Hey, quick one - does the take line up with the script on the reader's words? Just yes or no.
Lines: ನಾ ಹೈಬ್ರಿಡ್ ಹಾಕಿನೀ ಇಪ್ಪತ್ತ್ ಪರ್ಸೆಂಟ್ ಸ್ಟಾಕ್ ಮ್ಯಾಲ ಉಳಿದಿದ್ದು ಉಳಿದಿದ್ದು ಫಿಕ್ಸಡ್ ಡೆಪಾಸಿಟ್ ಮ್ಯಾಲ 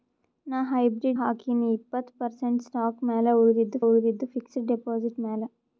yes